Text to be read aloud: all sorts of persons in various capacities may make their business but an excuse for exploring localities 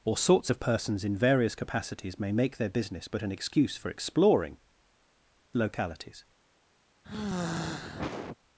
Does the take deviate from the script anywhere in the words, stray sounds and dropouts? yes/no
yes